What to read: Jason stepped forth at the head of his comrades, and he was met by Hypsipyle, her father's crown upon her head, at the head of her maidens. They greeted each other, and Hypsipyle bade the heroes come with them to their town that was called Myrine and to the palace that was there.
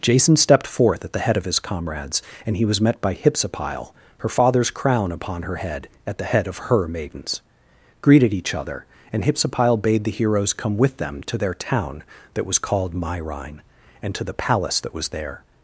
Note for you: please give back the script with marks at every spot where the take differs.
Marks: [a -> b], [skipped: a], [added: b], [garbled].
Jason stepped forth at the head of his comrades, and he was met by Hypsipyle, her father's crown upon her head, at the head of her maidens. [skipped: They] greeted each other, and Hypsipyle bade the heroes come with them to their town that was called Myrine and to the palace that was there.